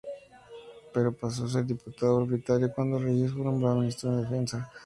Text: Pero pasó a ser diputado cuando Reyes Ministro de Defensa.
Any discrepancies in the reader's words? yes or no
yes